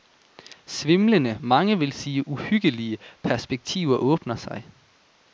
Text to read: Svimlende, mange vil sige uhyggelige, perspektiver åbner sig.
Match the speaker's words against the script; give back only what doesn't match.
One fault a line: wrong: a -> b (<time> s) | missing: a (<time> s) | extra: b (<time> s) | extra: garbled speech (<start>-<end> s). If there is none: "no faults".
no faults